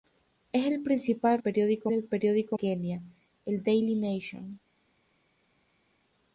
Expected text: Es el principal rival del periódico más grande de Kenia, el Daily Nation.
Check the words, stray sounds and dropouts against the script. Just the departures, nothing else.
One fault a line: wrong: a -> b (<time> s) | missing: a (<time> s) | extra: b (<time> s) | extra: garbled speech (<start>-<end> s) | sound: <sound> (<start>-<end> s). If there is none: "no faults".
wrong: rival -> periódico (1.4 s)
missing: más grande de (2.6 s)